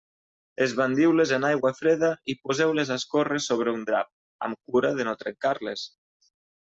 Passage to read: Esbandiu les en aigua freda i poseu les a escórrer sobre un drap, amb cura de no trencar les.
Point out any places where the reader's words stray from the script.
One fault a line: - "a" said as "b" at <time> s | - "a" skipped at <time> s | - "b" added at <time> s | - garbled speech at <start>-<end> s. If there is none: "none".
none